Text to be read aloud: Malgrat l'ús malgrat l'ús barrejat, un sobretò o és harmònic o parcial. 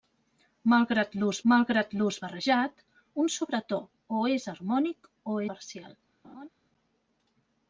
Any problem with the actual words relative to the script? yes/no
no